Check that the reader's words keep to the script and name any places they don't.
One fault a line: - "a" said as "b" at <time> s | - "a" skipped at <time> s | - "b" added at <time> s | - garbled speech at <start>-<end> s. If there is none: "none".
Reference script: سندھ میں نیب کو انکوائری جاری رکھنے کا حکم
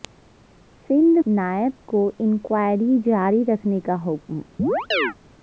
- "میں" skipped at 1.2 s